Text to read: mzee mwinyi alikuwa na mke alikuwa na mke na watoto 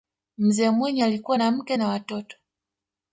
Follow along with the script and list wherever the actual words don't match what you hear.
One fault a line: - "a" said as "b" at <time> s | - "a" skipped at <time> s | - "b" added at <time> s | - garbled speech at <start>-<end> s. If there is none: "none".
- "alikuwa na mke" skipped at 1.8 s